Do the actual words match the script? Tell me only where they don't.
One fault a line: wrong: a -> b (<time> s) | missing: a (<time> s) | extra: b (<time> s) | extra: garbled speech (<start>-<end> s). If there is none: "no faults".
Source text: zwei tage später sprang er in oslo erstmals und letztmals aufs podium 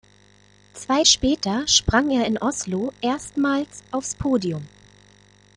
missing: tage (1.0 s)
missing: und letztmals (3.8 s)